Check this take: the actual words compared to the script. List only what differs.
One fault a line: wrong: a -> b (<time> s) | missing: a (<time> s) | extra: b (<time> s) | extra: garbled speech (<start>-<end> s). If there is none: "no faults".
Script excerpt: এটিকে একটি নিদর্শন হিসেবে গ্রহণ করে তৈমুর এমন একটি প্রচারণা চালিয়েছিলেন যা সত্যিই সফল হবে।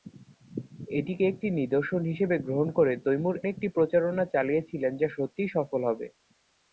missing: এমন (3.4 s)